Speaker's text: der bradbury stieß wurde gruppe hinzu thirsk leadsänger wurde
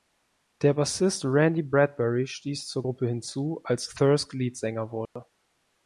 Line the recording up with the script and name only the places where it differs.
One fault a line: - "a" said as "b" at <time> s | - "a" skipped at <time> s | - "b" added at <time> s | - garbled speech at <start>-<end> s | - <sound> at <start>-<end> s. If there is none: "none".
- "bassist randy" added at 0.7 s
- "wurde" said as "zur" at 2.6 s
- "als" added at 3.6 s
- dropout at 5.1-5.2 s